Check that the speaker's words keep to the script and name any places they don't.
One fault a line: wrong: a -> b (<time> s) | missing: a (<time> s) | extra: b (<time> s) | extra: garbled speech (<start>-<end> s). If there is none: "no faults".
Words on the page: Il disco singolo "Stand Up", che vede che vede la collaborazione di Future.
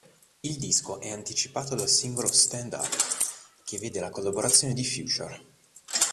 extra: è anticipato dal (1.0 s)
missing: che vede (4.0 s)